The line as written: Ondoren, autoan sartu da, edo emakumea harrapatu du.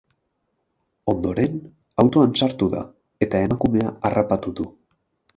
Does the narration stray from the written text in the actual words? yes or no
yes